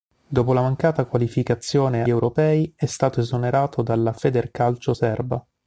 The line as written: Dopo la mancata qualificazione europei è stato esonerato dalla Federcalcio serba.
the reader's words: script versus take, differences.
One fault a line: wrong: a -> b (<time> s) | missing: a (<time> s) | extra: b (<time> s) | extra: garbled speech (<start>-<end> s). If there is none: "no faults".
no faults